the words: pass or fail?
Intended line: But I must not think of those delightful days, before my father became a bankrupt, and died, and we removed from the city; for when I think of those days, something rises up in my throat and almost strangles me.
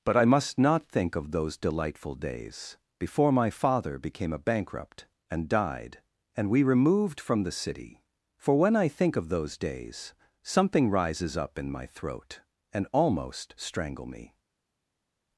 fail